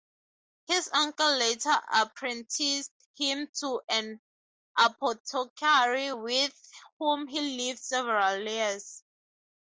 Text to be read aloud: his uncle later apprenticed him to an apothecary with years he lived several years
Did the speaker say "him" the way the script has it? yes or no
yes